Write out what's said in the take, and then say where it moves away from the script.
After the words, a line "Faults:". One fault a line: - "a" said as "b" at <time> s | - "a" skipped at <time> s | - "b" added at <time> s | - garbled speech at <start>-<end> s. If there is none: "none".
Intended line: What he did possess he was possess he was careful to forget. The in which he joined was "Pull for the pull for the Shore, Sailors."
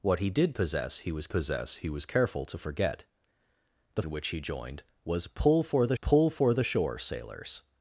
What he did possess he was possess he was careful to forget. The in which he joined was "Pull for the pull for the Shore, Sailors."
Faults:
none